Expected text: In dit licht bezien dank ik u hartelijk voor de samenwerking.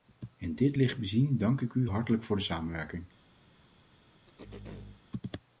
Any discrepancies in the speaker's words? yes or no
no